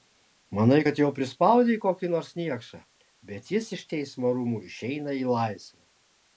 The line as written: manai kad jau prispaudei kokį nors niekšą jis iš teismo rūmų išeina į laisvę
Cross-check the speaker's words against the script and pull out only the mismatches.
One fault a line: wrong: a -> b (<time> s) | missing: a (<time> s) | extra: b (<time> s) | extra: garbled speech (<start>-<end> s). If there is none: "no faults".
extra: bet (3.3 s)